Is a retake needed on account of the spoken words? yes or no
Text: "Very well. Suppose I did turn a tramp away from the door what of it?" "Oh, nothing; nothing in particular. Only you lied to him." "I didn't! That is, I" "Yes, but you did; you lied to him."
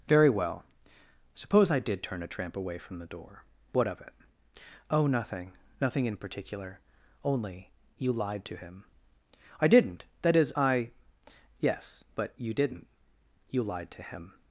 yes